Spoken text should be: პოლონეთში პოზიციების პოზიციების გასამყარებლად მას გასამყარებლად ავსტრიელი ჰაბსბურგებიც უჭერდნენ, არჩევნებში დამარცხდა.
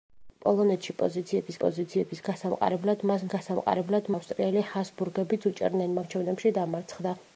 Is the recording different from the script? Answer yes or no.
no